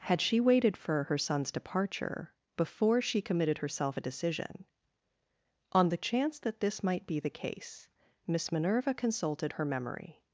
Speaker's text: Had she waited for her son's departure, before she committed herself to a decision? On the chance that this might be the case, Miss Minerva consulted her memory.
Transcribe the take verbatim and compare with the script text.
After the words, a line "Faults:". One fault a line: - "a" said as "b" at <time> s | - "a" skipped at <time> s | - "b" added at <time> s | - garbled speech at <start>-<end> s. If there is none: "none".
Had she waited for her son's departure, before she committed herself a decision? On the chance that this might be the case, Miss Minerva consulted her memory.
Faults:
- "to" skipped at 4.0 s